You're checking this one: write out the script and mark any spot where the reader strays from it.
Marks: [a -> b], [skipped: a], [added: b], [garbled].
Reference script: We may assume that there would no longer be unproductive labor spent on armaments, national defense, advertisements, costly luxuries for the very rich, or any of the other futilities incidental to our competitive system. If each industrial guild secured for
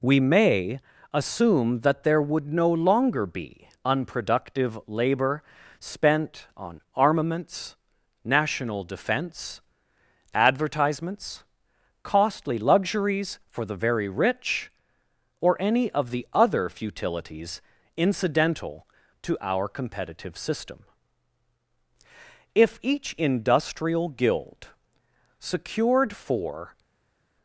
We may assume that there would no longer be unproductive labor spent on armaments, national defense, advertisements, costly luxuries for the very rich, or any of the other futilities incidental to our competitive system. If each industrial guild secured for